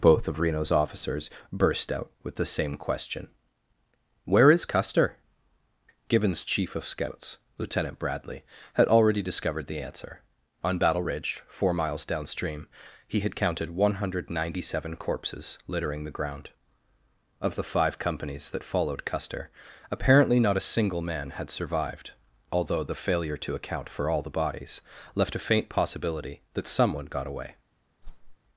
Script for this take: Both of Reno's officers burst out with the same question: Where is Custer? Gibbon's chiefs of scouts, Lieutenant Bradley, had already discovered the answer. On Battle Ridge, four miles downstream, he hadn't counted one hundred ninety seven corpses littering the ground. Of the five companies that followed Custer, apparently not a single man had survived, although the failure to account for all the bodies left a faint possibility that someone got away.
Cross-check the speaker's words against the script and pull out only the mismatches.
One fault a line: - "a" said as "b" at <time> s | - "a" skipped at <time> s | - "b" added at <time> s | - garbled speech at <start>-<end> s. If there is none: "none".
- "chiefs" said as "chief" at 6.5 s
- "hadn't" said as "had" at 13.2 s